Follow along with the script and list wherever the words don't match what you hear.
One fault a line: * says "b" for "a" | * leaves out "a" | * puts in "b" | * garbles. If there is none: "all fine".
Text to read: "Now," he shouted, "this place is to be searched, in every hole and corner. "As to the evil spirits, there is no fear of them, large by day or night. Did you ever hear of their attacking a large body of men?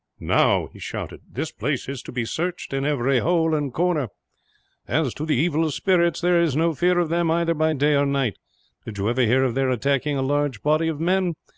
* says "either" for "large"